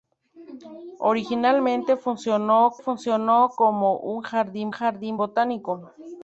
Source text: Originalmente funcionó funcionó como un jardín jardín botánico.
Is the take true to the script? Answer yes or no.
yes